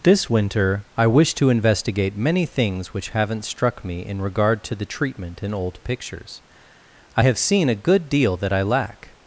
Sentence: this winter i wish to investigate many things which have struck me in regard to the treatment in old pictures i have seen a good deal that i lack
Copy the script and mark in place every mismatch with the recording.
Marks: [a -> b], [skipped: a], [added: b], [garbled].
this winter i wish to investigate many things which [have -> haven't] struck me in regard to the treatment in old pictures i have seen a good deal that i lack